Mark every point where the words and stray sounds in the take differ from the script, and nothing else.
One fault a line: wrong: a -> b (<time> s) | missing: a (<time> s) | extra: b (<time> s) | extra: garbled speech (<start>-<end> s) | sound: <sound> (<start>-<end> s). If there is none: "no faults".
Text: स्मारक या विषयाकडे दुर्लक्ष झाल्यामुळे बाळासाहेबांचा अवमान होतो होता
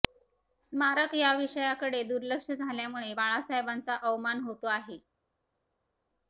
wrong: होता -> आहे (4.7 s)